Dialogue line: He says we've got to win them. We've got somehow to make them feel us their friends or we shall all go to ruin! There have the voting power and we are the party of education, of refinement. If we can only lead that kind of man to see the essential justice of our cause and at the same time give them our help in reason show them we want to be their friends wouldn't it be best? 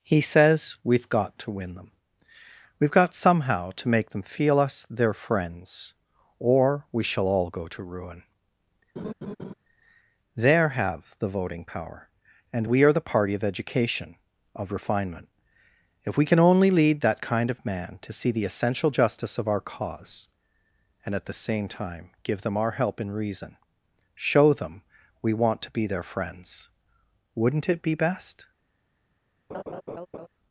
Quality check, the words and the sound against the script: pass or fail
fail